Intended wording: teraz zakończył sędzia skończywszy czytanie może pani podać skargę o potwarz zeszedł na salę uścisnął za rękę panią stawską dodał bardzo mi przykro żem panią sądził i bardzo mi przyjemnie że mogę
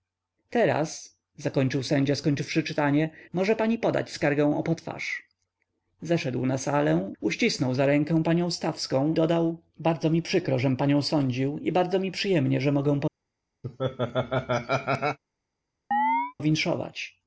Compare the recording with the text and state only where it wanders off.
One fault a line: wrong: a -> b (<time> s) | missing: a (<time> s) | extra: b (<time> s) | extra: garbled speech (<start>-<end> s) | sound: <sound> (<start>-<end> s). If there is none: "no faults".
sound: laugh (13.6-15.2 s)
sound: chirp (15.9-16.3 s)